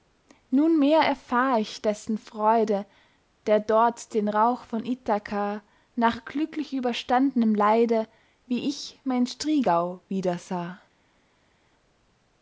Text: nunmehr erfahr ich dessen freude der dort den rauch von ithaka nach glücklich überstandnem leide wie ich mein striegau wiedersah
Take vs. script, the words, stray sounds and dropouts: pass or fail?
pass